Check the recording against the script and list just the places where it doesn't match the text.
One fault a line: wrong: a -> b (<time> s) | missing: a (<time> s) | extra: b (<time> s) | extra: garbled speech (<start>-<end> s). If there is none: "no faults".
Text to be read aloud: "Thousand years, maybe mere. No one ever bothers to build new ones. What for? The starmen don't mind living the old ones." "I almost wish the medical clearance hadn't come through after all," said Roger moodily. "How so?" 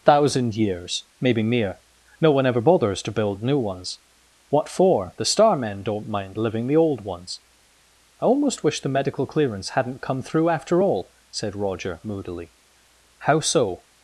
no faults